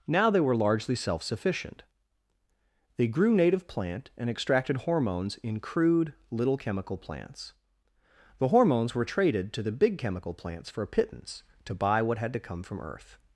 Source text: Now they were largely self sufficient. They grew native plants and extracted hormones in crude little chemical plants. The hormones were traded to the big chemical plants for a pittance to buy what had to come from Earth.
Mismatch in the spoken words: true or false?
true